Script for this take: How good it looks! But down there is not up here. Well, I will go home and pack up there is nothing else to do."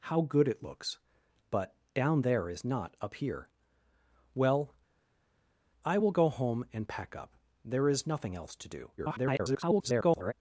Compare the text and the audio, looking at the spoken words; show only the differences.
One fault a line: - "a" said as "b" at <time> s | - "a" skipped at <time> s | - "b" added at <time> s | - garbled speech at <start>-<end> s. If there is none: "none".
- garbled speech at 9.0-10.3 s